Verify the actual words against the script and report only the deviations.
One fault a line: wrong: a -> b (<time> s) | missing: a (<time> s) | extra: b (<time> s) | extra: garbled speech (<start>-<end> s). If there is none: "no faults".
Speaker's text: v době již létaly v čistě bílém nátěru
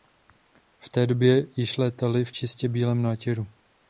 extra: té (0.9 s)